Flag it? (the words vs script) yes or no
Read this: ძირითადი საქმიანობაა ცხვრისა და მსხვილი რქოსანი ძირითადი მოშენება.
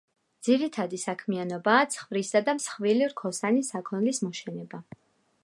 yes